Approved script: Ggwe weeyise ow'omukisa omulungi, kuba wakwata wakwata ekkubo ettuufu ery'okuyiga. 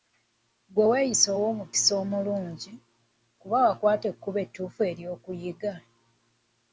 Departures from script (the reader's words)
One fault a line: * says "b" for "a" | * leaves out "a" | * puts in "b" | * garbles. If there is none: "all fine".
* leaves out "wakwata"